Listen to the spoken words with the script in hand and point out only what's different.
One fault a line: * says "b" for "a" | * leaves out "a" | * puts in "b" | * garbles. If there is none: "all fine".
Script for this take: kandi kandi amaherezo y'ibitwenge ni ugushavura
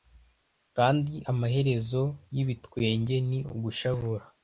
* leaves out "kandi"